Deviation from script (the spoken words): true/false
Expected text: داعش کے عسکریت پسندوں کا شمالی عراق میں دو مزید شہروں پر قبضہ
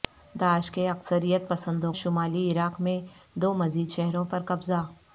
true